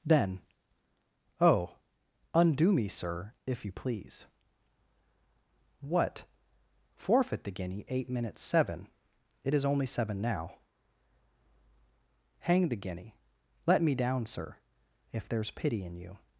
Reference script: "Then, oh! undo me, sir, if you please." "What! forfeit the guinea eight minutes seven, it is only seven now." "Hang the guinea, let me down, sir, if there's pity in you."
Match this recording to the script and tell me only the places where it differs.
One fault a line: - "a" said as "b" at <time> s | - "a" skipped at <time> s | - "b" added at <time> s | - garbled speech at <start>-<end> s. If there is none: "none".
none